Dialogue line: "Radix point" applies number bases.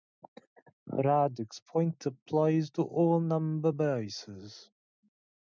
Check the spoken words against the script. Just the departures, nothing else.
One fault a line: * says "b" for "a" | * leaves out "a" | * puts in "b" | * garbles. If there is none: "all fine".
* puts in "to all"